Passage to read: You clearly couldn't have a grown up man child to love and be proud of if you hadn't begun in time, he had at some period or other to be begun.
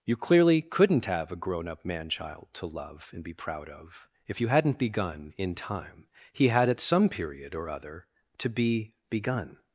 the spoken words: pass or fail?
pass